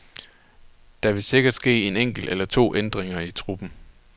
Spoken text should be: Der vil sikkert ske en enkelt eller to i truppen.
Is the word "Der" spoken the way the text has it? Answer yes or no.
yes